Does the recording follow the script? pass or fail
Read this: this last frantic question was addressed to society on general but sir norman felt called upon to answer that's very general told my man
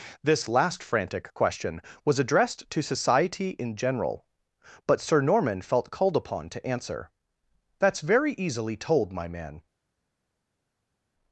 fail